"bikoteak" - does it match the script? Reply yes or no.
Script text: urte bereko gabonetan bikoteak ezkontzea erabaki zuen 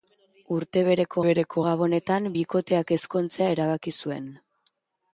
yes